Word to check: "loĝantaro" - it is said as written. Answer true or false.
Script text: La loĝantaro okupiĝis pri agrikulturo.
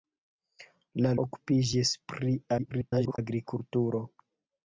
false